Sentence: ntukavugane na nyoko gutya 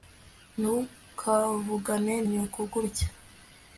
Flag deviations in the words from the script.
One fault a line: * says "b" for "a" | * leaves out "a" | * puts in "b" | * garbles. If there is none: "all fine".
* leaves out "na"